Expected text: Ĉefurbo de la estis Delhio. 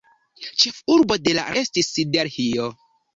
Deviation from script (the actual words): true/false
false